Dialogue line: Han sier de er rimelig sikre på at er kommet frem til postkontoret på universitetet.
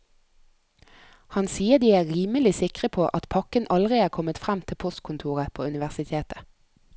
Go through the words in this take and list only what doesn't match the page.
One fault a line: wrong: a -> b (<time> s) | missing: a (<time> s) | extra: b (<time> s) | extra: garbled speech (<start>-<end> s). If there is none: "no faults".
extra: pakken aldri (3.4 s)